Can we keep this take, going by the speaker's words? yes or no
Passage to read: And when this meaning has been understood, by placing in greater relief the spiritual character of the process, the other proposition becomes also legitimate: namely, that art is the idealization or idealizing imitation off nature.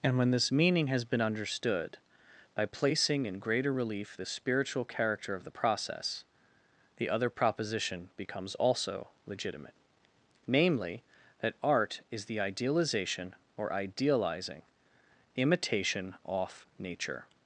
yes